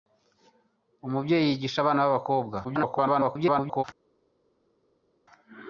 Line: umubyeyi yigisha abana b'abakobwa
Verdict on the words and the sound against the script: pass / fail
fail